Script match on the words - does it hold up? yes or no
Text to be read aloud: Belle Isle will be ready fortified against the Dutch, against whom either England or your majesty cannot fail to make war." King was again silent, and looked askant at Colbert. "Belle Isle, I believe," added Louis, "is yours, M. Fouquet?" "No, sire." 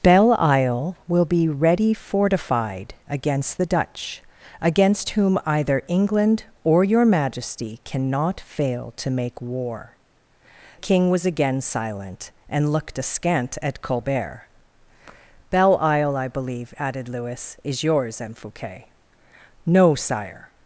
yes